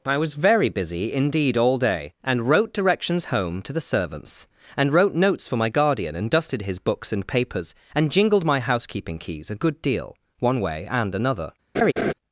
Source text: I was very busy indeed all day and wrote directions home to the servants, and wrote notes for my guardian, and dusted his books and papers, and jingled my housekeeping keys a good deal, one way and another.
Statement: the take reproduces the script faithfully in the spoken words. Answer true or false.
true